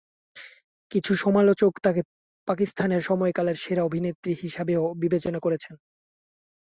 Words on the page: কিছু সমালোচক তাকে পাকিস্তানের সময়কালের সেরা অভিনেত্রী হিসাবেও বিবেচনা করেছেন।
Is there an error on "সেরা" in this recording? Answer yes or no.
no